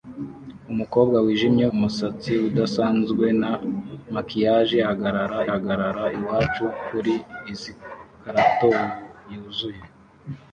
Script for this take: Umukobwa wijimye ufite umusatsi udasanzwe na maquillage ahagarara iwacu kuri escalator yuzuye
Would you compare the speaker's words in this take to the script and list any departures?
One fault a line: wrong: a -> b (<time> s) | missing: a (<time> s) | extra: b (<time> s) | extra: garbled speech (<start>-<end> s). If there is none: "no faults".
missing: ufite (1.6 s)
extra: ahagarara (5.5 s)